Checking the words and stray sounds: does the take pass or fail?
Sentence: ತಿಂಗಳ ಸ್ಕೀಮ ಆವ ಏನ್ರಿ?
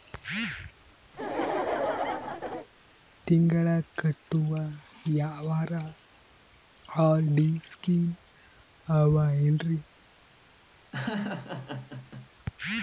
fail